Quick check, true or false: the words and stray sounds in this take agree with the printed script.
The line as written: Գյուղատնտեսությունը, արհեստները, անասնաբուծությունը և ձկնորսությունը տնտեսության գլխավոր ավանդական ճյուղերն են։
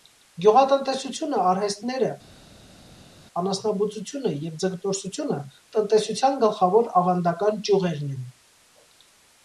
true